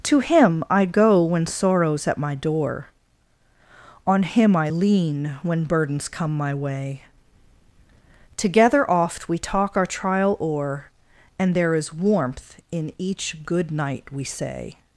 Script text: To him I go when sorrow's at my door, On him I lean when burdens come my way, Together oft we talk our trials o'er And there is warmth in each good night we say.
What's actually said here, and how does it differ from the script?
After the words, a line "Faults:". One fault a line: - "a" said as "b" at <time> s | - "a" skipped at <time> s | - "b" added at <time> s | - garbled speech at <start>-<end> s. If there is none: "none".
To him I go when sorrow's at my door, On him I lean when burdens come my way, Together oft we talk our trial o'er And there is warmth in each good night we say.
Faults:
- "trials" said as "trial" at 9.9 s